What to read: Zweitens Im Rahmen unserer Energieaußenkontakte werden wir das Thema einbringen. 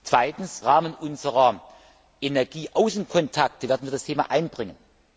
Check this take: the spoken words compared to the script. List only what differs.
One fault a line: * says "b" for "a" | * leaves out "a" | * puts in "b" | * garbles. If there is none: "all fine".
* leaves out "Im"